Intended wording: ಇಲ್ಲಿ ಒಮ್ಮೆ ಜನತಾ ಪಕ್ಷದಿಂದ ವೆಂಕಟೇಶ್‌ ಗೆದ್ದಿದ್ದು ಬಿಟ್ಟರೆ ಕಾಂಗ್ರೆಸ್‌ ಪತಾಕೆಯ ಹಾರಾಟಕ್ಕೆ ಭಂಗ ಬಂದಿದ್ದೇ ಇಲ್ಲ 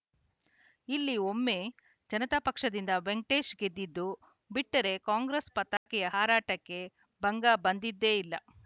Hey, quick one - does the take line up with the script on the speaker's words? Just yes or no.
yes